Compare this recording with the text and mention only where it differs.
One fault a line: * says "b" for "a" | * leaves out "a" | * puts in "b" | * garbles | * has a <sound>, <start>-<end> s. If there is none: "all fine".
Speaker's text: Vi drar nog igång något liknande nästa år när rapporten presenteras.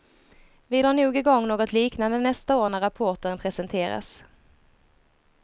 all fine